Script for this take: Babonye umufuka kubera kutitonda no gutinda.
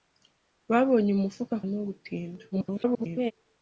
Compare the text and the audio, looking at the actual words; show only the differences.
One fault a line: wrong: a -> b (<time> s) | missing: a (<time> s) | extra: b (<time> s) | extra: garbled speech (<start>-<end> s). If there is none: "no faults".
missing: kubera kutitonda (1.6 s)
extra: garbled speech (2.5-3.3 s)